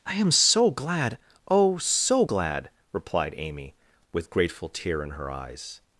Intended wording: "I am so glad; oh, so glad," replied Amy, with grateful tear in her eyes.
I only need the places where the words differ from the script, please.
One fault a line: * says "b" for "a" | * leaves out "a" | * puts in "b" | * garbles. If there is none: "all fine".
all fine